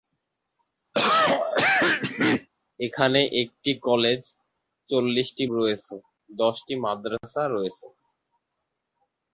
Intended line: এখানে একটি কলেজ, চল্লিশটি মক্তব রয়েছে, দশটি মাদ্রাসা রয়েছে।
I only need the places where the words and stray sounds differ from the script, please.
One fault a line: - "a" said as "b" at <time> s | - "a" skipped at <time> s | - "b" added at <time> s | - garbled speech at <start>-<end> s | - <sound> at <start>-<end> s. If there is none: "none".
- cough at 0.9-2.5 s
- "মক্তব" skipped at 5.4 s